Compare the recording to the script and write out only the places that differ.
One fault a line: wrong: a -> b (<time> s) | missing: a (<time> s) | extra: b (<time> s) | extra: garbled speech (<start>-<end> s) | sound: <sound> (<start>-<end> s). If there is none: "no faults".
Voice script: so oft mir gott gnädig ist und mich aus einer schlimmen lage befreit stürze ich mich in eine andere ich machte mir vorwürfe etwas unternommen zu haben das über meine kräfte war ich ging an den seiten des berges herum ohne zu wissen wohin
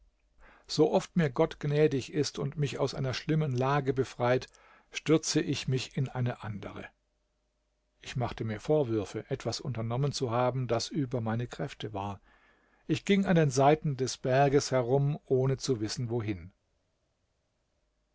no faults